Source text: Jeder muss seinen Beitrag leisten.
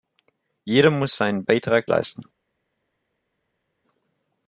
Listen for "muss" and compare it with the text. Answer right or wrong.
right